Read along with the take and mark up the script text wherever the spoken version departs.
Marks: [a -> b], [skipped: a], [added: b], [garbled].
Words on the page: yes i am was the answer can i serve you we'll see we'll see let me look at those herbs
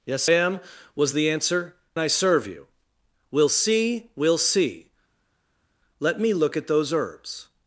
yes [skipped: i] am was the answer [skipped: can] i serve you we'll see we'll see let me look at those herbs